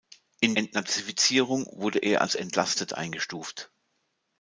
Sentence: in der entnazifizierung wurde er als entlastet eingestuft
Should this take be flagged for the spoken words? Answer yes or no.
yes